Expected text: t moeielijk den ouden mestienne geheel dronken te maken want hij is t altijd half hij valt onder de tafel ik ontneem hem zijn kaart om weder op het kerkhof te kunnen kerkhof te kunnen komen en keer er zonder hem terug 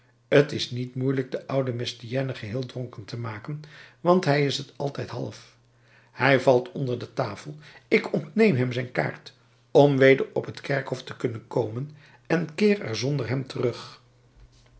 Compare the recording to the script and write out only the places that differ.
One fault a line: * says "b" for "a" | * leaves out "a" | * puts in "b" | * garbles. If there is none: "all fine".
* puts in "is niet"
* leaves out "kerkhof te kunnen"